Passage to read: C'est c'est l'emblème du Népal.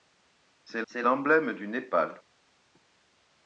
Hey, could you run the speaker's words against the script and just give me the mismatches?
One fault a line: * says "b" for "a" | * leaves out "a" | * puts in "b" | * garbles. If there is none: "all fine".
all fine